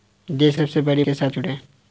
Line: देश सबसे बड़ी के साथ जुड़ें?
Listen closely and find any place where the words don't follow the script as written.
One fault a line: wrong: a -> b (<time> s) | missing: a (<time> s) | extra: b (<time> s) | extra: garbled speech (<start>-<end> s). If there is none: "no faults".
no faults